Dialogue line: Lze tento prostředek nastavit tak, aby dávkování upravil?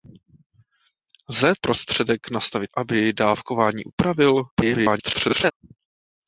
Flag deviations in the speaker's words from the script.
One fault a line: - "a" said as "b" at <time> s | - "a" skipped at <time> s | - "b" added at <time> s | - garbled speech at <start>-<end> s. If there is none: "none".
- "tento" skipped at 1.5 s
- "tak" skipped at 2.7 s
- garbled speech at 4.5-5.5 s